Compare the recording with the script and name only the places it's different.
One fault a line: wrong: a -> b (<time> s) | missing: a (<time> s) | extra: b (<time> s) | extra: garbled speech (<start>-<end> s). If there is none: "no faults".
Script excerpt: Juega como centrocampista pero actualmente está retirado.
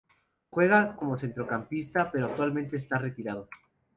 no faults